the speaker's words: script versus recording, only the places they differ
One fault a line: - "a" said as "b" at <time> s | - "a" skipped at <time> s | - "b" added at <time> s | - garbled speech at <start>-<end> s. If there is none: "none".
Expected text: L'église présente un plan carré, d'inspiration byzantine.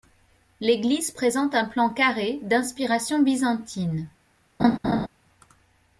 none